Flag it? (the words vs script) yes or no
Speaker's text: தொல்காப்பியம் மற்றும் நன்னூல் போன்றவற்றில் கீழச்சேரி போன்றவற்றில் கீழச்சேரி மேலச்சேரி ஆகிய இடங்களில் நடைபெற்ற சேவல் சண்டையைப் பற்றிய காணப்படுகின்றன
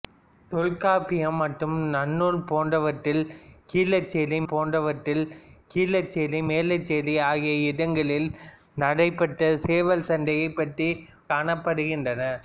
no